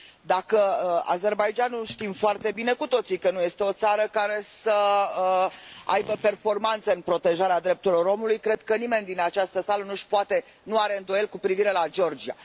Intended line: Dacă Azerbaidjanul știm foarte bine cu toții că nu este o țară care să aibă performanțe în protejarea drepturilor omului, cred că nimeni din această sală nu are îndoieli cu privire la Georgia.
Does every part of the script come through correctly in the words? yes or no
yes